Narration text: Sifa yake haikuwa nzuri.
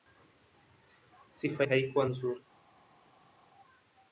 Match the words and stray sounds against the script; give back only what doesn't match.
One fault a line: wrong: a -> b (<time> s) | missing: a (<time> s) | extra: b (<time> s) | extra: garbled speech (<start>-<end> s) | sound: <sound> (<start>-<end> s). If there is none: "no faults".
missing: yake (1.6 s)